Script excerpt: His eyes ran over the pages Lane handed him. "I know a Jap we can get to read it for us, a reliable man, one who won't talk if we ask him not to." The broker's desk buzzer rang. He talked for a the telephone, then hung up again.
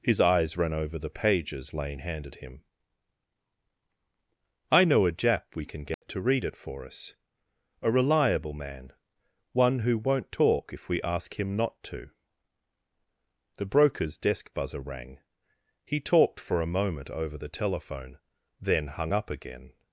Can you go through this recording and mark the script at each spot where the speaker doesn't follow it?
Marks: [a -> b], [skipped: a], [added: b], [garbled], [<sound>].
His eyes ran over the pages Lane handed him. "I know a Jap we can get [dropout] to read it for us, a reliable man, one who won't talk if we ask him not to." The broker's desk buzzer rang. He talked for a [added: moment over] the telephone, then hung up again.